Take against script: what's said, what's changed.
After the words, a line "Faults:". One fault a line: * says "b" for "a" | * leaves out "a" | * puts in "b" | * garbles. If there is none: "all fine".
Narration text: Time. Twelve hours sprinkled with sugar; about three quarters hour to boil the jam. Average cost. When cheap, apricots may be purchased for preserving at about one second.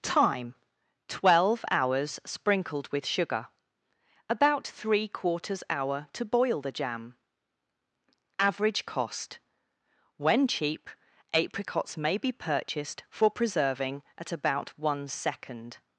Time. Twelve hours sprinkled with sugar; about three quarters hour to boil the jam. Average cost. When cheap, apricots may be purchased for preserving at about one second.
Faults:
all fine